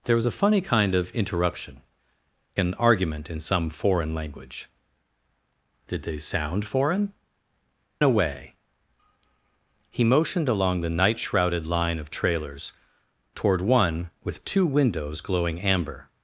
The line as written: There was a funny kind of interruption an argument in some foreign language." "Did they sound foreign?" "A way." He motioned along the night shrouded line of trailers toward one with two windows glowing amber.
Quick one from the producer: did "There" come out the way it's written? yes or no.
yes